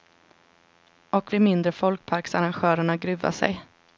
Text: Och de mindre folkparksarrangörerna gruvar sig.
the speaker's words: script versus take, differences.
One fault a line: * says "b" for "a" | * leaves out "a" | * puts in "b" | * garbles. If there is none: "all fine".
all fine